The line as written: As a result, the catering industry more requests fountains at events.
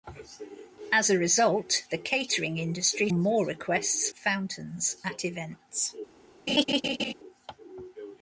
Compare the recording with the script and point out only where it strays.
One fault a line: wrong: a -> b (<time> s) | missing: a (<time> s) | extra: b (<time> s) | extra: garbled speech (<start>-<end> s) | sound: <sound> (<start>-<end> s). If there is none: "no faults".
sound: laugh (6.5-7.1 s)